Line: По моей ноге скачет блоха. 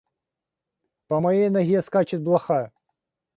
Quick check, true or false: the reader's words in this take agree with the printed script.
true